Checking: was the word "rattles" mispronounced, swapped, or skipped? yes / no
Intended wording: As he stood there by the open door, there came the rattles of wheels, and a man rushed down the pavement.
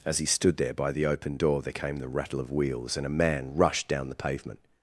yes